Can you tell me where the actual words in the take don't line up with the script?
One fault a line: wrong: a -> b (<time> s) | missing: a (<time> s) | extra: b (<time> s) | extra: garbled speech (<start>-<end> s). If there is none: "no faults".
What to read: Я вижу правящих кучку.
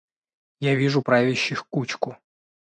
no faults